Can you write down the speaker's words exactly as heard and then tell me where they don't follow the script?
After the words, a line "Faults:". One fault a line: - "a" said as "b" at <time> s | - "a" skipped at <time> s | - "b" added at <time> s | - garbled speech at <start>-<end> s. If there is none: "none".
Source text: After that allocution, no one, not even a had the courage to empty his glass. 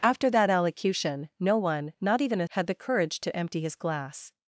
After that allocution, no one, not even a had the courage to empty his glass.
Faults:
none